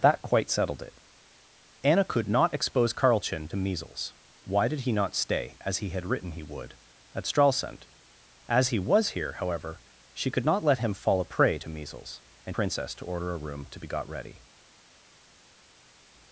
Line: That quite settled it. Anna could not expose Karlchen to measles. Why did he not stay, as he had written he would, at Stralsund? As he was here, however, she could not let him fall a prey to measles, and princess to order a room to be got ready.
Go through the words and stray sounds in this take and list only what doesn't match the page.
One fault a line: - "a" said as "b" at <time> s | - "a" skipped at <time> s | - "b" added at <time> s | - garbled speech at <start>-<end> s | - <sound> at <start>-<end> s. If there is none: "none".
none